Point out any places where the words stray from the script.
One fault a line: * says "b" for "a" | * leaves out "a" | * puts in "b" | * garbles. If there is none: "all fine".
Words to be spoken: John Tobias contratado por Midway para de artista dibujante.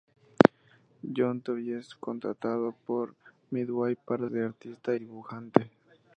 all fine